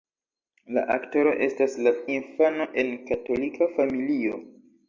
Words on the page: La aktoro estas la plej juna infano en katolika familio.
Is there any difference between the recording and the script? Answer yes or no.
yes